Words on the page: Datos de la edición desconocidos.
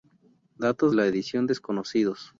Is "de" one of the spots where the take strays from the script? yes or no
yes